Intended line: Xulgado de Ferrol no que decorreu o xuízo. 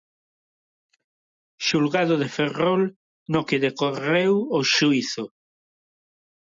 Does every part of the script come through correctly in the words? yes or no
yes